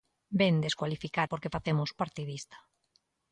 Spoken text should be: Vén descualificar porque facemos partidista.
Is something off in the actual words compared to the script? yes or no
no